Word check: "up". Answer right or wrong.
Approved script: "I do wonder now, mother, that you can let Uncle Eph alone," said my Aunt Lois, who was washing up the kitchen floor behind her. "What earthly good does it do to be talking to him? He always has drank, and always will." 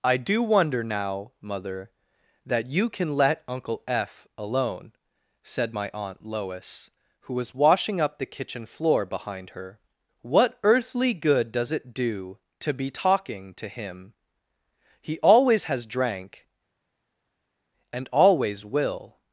right